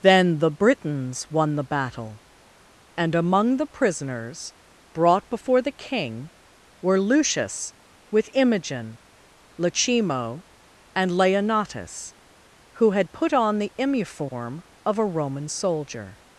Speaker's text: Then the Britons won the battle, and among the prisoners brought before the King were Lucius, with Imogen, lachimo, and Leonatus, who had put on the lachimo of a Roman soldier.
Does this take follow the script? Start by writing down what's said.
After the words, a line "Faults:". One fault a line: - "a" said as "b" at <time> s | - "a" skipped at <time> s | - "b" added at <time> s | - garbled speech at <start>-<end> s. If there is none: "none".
Then the Britons won the battle, and among the prisoners brought before the King were Lucius, with Imogen, lachimo, and Leonatus, who had put on the imiform of a Roman soldier.
Faults:
- "lachimo" said as "imiform" at 13.8 s